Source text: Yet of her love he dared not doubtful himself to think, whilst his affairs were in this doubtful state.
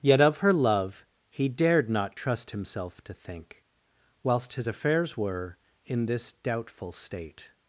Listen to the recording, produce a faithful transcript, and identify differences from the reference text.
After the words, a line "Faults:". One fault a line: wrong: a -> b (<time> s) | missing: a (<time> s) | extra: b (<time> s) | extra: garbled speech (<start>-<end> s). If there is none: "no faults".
Yet of her love he dared not trust himself to think, whilst his affairs were in this doubtful state.
Faults:
wrong: doubtful -> trust (2.1 s)